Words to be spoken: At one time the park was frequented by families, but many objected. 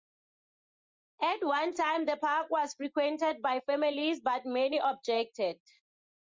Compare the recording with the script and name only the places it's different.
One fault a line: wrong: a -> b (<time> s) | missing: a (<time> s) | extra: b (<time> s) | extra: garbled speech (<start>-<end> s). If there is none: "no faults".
no faults